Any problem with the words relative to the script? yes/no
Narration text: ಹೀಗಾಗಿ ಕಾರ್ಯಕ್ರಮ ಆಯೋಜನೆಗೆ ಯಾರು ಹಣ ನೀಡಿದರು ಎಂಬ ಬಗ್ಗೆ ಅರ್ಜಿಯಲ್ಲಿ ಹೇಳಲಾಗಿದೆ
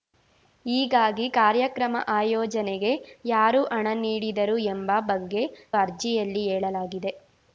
no